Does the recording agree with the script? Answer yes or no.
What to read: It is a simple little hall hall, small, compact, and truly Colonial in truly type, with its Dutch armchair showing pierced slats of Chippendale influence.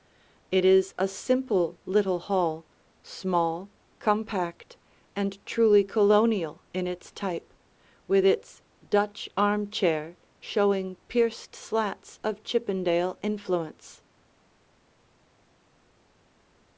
no